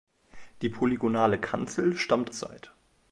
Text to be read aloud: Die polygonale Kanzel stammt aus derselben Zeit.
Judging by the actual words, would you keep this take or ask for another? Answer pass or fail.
fail